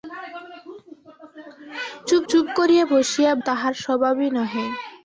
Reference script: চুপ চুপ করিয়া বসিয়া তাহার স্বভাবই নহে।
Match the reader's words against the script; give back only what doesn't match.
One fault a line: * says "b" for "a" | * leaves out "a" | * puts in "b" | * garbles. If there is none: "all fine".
all fine